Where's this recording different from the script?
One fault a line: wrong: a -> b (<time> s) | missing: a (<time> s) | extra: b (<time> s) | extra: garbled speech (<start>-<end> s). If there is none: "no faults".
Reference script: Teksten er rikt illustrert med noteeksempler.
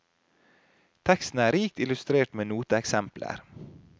no faults